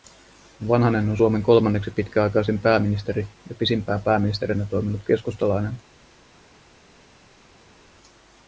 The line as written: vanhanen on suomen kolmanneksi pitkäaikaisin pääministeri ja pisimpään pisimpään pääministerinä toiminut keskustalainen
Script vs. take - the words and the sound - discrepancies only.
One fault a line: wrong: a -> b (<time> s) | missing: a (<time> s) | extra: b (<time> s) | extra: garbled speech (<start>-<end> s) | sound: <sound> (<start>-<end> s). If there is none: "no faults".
missing: pisimpään (4.0 s)